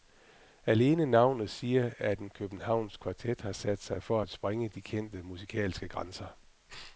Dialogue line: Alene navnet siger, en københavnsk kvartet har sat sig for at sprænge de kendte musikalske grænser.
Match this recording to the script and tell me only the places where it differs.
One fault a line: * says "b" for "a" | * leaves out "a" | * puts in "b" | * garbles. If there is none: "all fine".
* puts in "at"